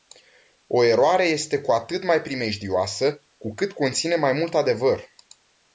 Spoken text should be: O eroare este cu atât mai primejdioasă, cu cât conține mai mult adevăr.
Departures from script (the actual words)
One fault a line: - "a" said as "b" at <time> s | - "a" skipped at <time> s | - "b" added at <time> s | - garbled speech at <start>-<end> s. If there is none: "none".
none